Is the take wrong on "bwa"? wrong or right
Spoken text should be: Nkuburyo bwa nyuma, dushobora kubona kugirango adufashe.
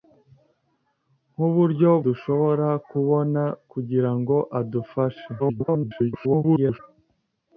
wrong